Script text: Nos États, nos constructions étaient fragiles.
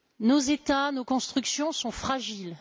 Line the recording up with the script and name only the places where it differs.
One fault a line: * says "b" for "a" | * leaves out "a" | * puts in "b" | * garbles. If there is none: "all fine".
* says "sont" for "étaient"